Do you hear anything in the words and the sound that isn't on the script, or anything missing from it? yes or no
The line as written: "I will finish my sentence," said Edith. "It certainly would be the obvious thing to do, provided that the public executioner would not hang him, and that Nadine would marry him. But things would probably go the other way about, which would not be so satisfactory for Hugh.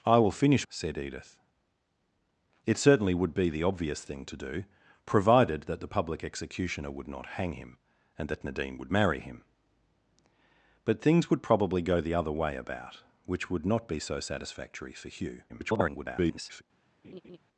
yes